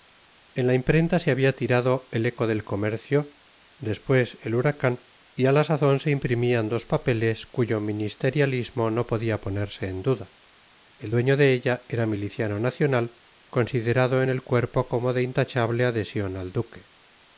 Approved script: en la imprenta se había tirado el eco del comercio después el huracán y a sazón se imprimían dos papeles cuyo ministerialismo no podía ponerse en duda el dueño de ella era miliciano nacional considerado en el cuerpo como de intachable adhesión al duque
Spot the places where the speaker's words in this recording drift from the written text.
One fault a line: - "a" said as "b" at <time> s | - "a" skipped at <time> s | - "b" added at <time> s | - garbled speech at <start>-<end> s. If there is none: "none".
- "la" added at 5.5 s